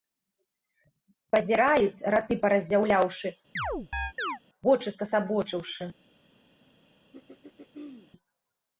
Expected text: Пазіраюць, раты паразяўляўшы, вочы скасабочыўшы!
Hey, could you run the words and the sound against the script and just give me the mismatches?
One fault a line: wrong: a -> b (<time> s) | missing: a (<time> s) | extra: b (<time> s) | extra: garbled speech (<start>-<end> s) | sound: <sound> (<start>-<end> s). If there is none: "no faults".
sound: chirp (3.6-4.4 s)
sound: throat clearing (7.1-8.1 s)